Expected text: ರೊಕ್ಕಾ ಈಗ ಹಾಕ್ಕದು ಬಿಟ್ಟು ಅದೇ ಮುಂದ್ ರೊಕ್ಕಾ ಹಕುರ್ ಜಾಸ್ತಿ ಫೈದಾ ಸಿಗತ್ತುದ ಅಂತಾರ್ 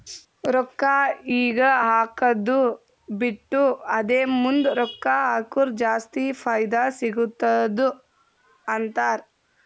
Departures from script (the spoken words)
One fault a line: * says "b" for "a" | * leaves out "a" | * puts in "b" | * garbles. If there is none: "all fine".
all fine